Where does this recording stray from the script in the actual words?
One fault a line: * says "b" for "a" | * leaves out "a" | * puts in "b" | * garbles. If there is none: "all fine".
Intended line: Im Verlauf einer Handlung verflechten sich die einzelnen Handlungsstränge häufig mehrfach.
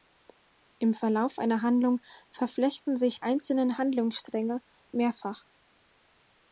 * leaves out "die"
* leaves out "häufig"